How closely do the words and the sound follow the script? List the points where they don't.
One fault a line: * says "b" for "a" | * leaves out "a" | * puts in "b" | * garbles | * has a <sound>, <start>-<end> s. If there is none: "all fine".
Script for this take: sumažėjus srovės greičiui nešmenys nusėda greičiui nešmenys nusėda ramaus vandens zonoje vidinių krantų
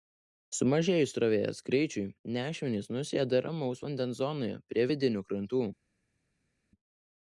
* leaves out "greičiui nešmenys nusėda"
* puts in "prie"